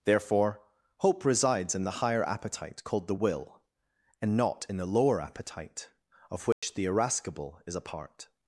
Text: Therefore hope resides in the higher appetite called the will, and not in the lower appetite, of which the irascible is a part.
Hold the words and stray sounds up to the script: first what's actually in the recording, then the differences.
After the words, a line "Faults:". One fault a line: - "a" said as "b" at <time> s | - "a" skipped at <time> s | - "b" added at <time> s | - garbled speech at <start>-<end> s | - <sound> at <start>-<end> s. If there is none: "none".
Therefore hope resides in the higher appetite called the will, and not in the lower appetite, of which the irascible is a part.
Faults:
- dropout at 6.5-6.6 s